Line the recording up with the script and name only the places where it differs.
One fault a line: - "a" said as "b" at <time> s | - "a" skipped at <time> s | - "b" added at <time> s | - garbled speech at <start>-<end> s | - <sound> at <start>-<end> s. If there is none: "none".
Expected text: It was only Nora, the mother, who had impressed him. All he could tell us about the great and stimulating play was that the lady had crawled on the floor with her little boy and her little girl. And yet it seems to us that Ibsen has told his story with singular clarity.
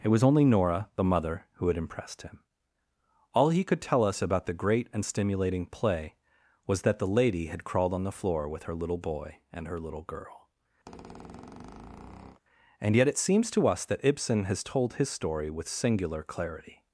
- squeak at 10.9-12.4 s